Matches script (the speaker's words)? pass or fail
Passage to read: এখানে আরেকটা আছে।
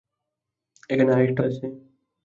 pass